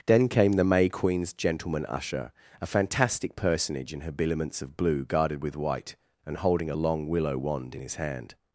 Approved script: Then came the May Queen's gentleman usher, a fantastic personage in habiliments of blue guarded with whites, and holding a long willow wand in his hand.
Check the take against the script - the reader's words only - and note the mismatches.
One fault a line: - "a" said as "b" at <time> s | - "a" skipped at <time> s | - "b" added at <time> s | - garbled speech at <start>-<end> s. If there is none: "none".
- "whites" said as "white" at 5.5 s